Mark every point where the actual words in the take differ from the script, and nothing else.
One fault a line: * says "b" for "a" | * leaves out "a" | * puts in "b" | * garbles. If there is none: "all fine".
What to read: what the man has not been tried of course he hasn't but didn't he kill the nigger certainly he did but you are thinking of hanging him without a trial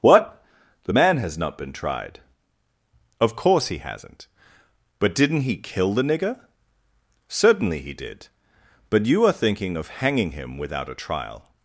all fine